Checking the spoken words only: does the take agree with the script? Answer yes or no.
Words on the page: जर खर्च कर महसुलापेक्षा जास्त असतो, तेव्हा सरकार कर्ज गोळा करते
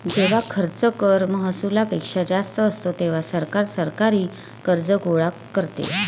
no